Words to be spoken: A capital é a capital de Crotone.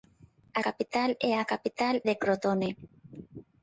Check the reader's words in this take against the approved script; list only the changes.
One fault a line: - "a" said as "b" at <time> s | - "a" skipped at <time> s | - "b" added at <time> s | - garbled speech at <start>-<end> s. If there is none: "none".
none